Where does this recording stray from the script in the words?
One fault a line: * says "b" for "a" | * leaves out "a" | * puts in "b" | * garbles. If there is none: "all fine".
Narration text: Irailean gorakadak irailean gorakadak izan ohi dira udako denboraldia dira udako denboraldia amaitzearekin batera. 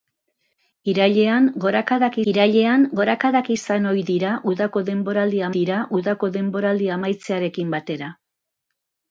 all fine